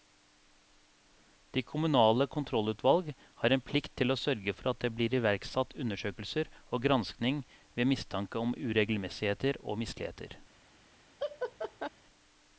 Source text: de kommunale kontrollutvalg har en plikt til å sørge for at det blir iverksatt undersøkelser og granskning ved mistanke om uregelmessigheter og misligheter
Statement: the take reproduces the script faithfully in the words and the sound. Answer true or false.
false